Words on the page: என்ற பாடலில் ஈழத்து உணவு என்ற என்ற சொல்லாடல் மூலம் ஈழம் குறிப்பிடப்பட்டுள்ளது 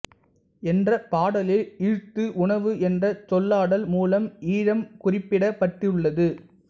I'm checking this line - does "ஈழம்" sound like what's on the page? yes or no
yes